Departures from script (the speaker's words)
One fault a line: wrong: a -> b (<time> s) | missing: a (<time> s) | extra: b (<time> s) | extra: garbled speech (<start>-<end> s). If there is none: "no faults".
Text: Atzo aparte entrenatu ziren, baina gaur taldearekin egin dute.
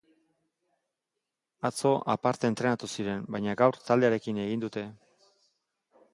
no faults